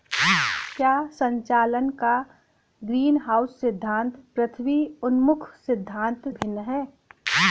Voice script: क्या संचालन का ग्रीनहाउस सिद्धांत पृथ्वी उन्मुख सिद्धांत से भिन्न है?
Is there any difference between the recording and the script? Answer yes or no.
yes